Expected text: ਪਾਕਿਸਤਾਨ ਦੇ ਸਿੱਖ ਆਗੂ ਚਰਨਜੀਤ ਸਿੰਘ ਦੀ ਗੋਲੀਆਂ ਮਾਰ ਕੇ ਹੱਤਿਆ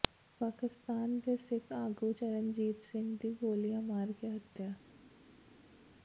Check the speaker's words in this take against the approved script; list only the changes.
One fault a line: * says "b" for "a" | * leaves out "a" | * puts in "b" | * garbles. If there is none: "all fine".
all fine